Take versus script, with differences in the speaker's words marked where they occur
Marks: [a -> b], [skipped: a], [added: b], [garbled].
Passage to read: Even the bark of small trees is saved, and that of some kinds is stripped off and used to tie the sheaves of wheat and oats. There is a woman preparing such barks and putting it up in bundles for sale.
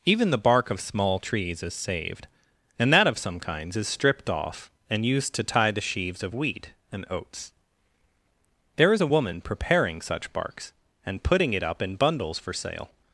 Even the bark of small trees is saved, and that of some kinds is stripped off and used to tie the sheaves of wheat and oats. There is a woman preparing such barks and putting it up in bundles for sale.